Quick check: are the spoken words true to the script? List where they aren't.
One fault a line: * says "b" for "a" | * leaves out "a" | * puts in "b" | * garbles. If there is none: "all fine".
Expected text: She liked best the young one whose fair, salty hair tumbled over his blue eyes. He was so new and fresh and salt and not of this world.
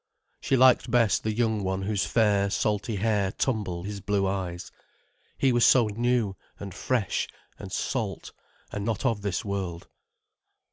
* leaves out "over"